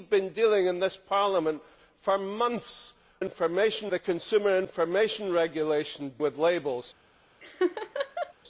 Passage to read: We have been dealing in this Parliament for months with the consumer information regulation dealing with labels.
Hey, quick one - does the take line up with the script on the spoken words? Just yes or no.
no